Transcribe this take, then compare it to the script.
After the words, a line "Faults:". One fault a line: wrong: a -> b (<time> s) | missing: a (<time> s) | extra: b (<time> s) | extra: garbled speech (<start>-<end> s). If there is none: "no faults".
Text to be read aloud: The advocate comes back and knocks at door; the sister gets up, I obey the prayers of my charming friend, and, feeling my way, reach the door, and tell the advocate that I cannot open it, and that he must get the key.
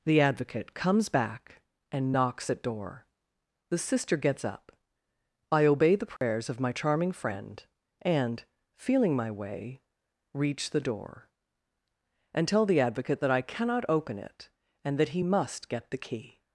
The advocate comes back and knocks at door; the sister gets up, I obey the prayers of my charming friend, and, feeling my way, reach the door, and tell the advocate that I cannot open it, and that he must get the key.
Faults:
no faults